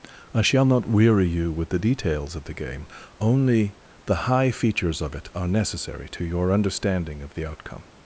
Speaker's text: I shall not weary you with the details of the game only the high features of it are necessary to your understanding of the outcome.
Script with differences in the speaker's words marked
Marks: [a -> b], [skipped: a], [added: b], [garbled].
I shall not weary you with the details of the game only the high features of it are necessary to your understanding of the outcome.